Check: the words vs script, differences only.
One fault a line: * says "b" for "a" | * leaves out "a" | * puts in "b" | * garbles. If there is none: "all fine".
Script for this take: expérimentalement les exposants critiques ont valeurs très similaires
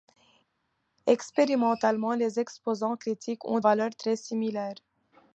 all fine